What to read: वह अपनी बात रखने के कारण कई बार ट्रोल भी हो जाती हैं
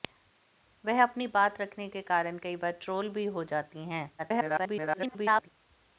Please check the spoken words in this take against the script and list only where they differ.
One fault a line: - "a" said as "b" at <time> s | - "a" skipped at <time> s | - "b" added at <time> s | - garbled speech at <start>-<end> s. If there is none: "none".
- garbled speech at 4.2-5.5 s